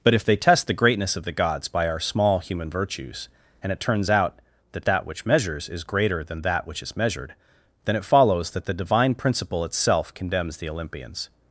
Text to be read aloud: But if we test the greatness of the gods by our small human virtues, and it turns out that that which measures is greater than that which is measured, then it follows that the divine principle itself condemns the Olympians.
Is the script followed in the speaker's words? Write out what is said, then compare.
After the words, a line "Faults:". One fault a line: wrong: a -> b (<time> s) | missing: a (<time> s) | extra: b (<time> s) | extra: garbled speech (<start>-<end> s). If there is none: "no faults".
But if they test the greatness of the gods by our small human virtues, and it turns out that that which measures is greater than that which is measured, then it follows that the divine principle itself condemns the Olympians.
Faults:
wrong: we -> they (0.2 s)